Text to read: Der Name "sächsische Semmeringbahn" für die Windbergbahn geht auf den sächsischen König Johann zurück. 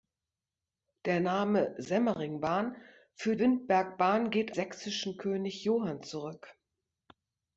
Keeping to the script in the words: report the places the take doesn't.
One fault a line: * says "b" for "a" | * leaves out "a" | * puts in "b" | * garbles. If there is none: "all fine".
* leaves out "sächsische"
* leaves out "die"
* leaves out "auf den"